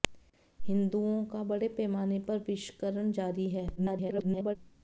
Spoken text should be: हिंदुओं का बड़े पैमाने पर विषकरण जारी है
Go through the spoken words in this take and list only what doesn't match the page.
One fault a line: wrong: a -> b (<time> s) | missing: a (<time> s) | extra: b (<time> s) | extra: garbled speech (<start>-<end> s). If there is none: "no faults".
extra: garbled speech (3.8-4.6 s)